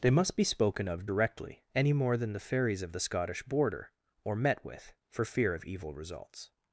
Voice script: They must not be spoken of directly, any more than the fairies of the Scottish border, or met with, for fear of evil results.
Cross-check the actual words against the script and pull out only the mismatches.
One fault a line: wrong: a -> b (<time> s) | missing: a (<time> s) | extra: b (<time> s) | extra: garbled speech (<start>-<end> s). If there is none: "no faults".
missing: not (0.3 s)